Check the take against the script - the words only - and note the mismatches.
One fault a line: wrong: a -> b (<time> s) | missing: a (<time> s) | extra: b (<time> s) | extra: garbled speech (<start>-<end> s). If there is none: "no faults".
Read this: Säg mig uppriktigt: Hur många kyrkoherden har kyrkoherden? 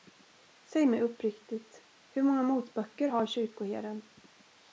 wrong: kyrkoherden -> motböcker (2.4 s)